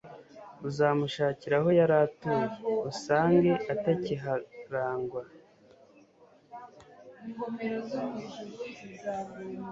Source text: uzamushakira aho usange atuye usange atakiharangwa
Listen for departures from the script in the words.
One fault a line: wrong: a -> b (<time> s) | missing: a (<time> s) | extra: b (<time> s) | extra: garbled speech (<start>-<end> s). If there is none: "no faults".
wrong: usange -> yari (1.8 s)